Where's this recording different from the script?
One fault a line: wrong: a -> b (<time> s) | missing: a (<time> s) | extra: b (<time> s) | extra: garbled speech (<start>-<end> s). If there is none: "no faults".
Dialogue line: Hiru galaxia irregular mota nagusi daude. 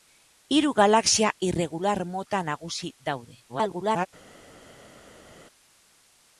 extra: garbled speech (3.5-4.1 s)